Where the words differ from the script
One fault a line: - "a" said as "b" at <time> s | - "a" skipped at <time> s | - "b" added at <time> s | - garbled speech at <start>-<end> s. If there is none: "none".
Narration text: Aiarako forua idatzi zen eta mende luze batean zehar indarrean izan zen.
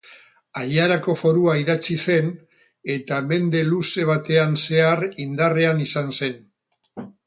none